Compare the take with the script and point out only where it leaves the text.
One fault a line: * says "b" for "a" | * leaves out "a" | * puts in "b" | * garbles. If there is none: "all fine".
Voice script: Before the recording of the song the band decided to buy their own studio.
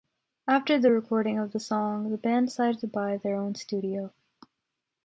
* says "After" for "Before"